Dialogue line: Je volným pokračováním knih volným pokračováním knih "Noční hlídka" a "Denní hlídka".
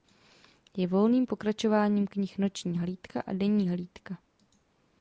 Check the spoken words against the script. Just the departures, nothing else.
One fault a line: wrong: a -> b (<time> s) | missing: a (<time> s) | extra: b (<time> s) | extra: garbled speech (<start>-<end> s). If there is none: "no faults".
missing: volným pokračováním knih (2.4 s)